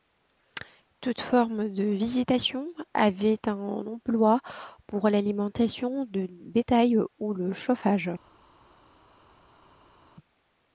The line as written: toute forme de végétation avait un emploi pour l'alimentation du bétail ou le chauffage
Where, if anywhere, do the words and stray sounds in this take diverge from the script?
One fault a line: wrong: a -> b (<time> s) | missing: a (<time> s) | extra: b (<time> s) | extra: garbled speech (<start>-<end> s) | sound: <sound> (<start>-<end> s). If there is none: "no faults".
no faults